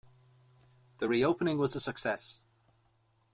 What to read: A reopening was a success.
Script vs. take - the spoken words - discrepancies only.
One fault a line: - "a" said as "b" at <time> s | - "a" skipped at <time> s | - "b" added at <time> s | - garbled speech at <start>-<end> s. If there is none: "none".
- "A" said as "The" at 1.0 s